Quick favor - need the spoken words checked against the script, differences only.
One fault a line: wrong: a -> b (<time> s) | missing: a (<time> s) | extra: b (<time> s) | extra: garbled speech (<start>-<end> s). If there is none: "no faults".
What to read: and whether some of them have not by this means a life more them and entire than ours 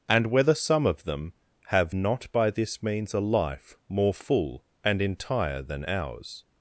wrong: them -> full (4.1 s)